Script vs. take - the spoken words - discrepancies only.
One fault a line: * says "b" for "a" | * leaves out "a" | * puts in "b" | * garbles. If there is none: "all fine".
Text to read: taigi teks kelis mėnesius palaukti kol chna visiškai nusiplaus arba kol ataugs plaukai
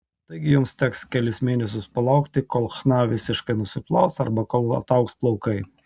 * puts in "jums"